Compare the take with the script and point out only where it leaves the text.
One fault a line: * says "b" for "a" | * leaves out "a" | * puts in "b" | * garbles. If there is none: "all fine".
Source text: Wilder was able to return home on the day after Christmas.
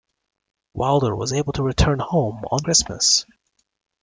* leaves out "the day after"